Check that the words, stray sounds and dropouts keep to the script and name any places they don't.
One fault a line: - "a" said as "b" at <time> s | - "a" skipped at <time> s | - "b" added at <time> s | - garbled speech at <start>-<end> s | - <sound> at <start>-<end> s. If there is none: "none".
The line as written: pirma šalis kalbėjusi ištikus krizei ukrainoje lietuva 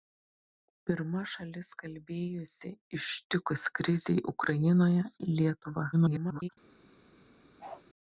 - garbled speech at 5.9-6.5 s
- bark at 7.6-7.8 s